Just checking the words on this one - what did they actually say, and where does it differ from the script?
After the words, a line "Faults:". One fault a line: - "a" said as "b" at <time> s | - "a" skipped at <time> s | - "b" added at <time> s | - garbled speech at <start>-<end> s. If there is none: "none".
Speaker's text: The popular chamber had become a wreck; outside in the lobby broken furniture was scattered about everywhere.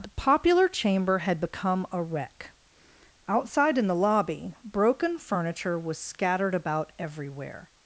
The popular chamber had become a wreck; outside in the lobby broken furniture was scattered about everywhere.
Faults:
none